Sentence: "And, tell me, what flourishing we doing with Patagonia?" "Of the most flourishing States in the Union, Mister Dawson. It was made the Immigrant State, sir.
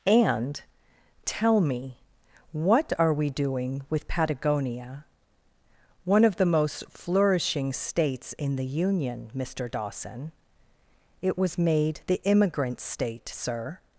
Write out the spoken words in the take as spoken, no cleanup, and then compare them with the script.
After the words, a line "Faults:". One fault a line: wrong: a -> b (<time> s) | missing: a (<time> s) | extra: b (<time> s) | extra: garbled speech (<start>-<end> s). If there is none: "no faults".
"And, tell me, what are we doing with Patagonia?" "One of the most flourishing States in the Union, Mister Dawson. It was made the Immigrant State, sir.
Faults:
wrong: flourishing -> are (3.0 s)
extra: One (6.0 s)